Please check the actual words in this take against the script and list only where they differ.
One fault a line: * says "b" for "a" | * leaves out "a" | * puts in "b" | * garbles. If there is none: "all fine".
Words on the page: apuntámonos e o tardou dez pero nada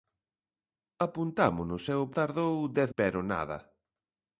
all fine